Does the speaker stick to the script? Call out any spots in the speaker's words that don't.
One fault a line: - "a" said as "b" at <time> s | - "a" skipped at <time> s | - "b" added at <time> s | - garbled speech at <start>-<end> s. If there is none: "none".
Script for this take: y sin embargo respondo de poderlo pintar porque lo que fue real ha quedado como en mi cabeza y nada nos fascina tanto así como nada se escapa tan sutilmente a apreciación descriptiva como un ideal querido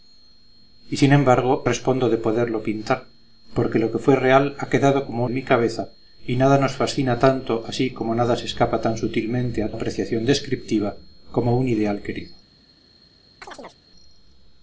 none